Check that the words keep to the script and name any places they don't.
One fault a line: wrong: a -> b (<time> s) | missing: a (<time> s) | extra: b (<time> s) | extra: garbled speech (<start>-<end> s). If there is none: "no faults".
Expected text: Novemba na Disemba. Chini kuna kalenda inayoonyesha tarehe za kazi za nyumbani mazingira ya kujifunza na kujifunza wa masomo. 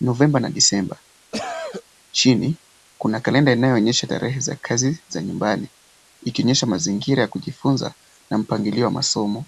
extra: ikionyesha (6.2 s)
wrong: kujifunza -> mpangilio (8.4 s)